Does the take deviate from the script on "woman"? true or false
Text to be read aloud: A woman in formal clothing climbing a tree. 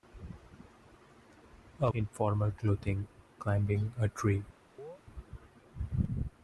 true